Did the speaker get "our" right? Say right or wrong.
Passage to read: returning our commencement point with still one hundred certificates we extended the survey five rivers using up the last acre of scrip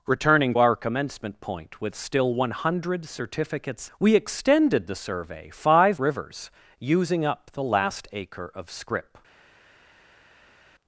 right